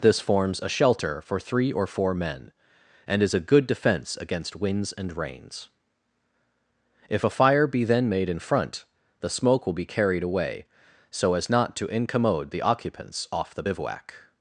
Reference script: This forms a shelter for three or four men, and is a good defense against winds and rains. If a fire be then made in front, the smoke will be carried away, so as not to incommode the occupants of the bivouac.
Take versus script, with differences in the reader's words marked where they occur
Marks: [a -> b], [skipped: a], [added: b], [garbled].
This forms a shelter for three or four men, and is a good defense against winds and rains. If a fire be then made in front, the smoke will be carried away, so as not to incommode the occupants [of -> off] the bivouac.